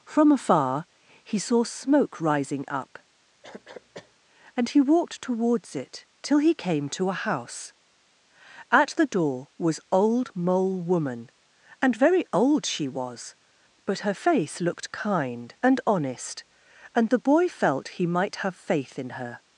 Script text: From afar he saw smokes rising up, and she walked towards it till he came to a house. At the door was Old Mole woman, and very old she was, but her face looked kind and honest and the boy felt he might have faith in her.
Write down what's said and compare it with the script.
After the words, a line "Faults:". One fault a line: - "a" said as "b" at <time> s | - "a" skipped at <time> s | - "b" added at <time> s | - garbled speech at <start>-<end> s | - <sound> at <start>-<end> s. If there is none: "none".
From afar he saw smoke rising up, and he walked towards it till he came to a house. At the door was Old Mole woman, and very old she was, but her face looked kind and honest and the boy felt he might have faith in her.
Faults:
- "smokes" said as "smoke" at 1.6 s
- cough at 3.4-4.2 s
- "she" said as "he" at 4.7 s